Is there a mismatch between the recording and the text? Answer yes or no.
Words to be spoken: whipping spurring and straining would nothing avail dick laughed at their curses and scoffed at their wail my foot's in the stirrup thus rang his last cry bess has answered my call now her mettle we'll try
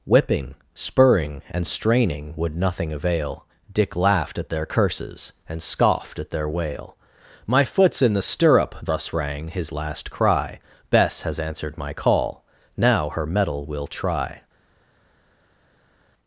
no